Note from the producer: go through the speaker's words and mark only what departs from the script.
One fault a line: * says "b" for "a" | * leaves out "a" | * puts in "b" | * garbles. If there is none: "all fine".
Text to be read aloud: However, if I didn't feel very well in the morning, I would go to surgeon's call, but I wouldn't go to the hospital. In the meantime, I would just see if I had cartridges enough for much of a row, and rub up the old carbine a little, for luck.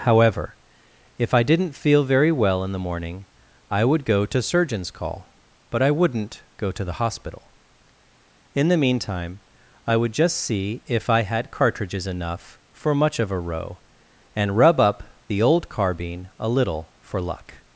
all fine